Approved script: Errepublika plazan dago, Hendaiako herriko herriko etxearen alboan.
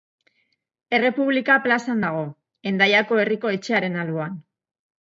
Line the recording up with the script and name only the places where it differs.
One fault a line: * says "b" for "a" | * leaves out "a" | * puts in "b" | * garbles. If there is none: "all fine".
* leaves out "herriko"